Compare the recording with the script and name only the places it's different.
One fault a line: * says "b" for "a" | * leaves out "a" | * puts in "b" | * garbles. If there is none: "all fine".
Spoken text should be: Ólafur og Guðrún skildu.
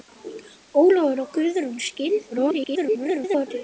* garbles